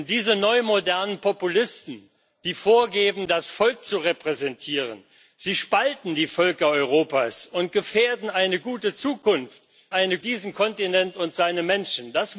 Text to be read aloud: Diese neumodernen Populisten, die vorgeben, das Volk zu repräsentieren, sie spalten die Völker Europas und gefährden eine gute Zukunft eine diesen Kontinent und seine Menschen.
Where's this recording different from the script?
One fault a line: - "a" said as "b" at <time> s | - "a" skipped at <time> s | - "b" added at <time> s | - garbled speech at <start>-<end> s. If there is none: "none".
none